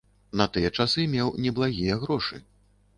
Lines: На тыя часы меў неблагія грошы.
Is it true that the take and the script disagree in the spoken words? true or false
false